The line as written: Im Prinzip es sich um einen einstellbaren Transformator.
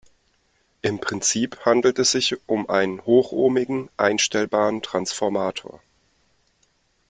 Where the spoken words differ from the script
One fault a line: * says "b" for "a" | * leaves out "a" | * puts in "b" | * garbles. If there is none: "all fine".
* puts in "handelt"
* puts in "hochohmigen"